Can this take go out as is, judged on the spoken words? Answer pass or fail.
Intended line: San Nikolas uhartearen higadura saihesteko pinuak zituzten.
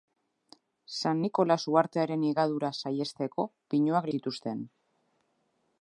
pass